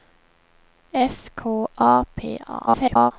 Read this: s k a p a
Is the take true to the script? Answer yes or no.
no